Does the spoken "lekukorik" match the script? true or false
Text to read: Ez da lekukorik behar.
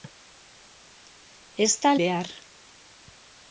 false